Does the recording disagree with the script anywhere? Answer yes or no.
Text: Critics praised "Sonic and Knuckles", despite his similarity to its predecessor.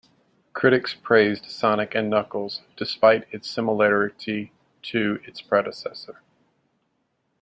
yes